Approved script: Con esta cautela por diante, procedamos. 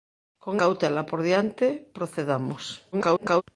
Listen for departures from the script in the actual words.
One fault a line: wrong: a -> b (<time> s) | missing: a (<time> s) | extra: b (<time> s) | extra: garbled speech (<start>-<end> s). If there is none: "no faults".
missing: esta (0.6 s)
extra: garbled speech (2.9-3.4 s)